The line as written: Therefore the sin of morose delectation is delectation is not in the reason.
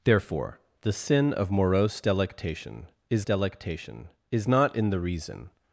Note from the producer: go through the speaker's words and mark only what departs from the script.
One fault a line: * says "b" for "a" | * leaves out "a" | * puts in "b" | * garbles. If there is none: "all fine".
all fine